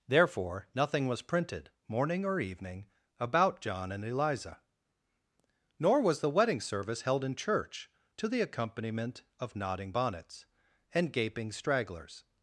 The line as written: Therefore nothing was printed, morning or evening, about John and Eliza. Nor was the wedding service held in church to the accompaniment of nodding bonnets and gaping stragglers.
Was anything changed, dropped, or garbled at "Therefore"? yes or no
no